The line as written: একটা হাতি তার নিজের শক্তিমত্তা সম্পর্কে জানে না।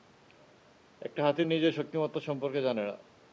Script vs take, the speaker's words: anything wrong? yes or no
yes